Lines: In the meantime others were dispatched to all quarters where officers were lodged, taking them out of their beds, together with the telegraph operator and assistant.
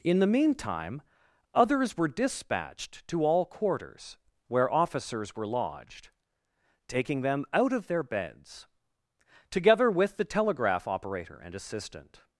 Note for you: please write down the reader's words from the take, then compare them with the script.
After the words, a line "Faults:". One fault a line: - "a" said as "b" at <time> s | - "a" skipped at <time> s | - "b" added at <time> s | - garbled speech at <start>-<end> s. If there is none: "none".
In the meantime others were dispatched to all quarters where officers were lodged, taking them out of their beds, together with the telegraph operator and assistant.
Faults:
none